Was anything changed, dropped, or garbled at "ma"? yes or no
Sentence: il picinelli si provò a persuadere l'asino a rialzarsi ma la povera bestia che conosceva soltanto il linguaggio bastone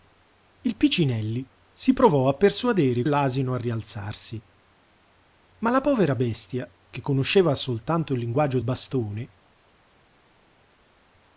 no